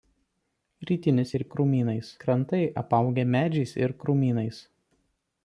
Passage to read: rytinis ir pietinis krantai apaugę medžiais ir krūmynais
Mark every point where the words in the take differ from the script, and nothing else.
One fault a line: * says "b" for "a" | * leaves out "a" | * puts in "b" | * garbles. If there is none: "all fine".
* says "krūmynais" for "pietinis"